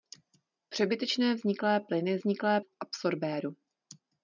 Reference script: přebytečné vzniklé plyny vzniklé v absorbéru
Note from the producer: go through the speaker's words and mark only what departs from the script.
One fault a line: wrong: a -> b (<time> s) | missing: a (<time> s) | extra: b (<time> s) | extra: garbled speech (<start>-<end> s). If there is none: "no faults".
no faults